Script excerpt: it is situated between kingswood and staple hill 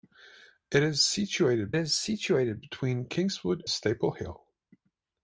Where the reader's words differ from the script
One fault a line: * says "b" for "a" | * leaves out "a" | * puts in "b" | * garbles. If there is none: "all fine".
* puts in "is situated"
* leaves out "and"